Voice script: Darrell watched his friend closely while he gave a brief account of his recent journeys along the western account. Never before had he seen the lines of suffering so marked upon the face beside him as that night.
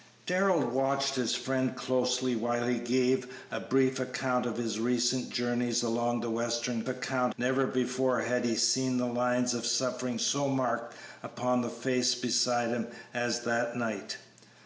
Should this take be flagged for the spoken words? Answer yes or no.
no